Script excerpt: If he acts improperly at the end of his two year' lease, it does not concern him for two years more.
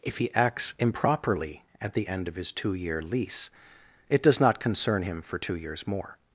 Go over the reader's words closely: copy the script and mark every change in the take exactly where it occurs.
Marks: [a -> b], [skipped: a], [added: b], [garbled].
If he acts improperly at the end of his two year' lease, it does not concern him for two years more.